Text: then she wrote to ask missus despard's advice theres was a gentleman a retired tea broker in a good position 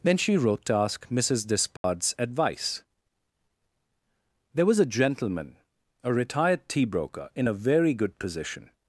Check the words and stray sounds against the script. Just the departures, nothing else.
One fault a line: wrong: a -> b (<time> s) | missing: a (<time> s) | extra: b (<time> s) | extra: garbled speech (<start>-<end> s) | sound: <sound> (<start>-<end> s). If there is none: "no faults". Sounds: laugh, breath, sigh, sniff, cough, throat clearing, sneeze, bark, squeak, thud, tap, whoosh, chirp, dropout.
sound: dropout (1.8-1.8 s)
wrong: theres -> there (4.5 s)
extra: very (7.5 s)